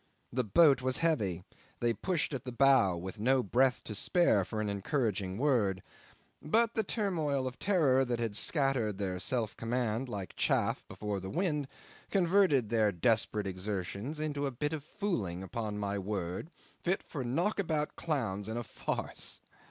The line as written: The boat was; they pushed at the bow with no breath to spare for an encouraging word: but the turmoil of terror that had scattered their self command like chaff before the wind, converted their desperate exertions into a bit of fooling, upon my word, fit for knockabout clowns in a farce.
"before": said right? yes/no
yes